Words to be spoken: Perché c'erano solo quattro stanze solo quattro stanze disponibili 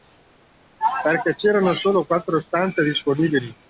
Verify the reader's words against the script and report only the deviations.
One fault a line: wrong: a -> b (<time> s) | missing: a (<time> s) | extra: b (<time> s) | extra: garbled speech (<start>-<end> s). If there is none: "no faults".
missing: solo quattro stanze (2.8 s)